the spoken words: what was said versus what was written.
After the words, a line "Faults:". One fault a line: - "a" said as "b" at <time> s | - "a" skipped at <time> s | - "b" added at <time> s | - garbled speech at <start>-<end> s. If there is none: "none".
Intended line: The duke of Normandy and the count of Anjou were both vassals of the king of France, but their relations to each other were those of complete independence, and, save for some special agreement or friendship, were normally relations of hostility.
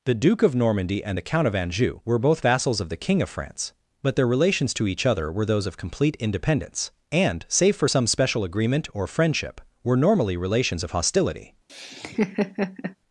The duke of Normandy and the count of Anjou were both vassals of the king of France, but their relations to each other were those of complete independence, and, save for some special agreement or friendship, were normally relations of hostility.
Faults:
none